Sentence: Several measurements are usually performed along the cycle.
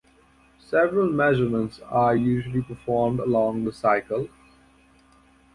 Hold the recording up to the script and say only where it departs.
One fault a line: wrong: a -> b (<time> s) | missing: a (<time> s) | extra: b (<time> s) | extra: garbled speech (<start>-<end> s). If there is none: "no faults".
no faults